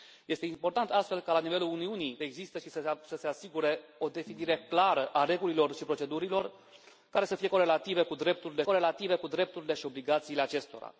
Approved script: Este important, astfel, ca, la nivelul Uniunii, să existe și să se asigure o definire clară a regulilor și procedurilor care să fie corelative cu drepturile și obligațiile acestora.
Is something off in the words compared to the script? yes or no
yes